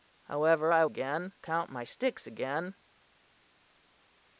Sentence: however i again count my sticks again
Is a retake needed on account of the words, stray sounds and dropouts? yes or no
no